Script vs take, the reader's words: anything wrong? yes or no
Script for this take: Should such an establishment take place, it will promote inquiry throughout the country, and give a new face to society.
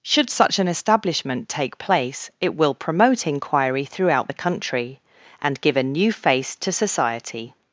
no